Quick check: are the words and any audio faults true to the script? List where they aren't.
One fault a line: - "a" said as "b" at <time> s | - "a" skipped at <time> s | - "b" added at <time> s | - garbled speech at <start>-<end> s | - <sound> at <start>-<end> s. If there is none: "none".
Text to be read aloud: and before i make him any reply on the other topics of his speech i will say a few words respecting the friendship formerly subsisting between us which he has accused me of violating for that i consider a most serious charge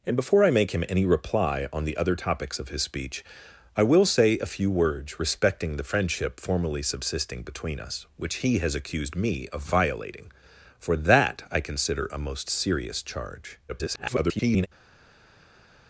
- garbled speech at 13.7-14.7 s